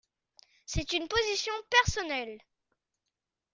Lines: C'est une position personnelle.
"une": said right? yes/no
yes